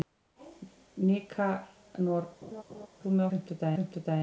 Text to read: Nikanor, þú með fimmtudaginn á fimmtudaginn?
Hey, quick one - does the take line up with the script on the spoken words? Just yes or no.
yes